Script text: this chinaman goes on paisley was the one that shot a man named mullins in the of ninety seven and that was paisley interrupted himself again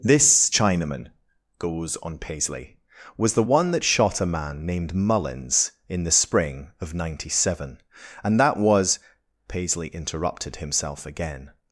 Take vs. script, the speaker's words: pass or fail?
fail